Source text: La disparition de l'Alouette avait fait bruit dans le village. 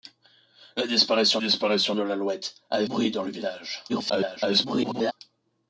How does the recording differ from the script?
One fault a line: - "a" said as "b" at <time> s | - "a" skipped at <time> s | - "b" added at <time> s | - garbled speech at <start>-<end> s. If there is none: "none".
- "disparition" added at 1.4 s
- "fait" skipped at 2.9 s
- garbled speech at 3.9-5.1 s